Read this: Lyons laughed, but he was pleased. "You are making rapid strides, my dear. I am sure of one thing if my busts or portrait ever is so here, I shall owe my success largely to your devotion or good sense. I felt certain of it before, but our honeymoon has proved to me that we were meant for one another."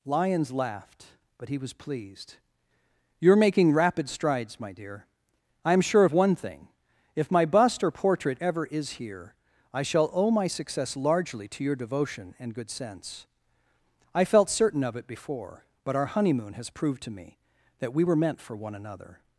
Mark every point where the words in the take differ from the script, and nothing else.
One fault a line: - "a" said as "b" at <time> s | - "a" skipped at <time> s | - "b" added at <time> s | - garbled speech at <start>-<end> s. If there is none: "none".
- "busts" said as "bust" at 7.4 s
- "so" skipped at 9.0 s
- "or" said as "and" at 12.4 s